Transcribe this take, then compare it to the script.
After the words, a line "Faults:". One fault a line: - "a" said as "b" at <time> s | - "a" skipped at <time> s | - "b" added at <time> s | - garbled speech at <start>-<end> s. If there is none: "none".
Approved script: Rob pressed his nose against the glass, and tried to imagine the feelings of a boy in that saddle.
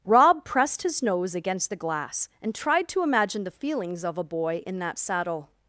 Rob pressed his nose against the glass, and tried to imagine the feelings of a boy in that saddle.
Faults:
none